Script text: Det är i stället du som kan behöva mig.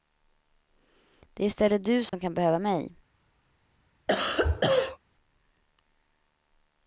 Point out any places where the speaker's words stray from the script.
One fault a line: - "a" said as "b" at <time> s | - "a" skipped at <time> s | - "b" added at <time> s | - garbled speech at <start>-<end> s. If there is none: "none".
none